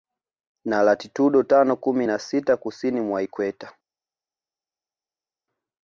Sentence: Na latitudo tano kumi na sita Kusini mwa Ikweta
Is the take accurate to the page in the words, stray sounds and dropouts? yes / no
yes